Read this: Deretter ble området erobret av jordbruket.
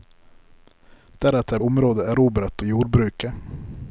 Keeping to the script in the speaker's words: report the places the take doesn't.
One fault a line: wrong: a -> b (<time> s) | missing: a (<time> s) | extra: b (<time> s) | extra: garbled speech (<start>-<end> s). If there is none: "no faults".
missing: ble (1.6 s)
missing: av (2.6 s)